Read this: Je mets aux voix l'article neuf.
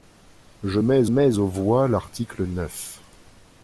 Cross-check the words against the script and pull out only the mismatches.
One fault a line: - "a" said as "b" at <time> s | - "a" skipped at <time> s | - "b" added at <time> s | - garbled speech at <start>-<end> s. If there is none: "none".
- "mets" added at 1.1 s